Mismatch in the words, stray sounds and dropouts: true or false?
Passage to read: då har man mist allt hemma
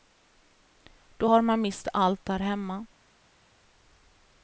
true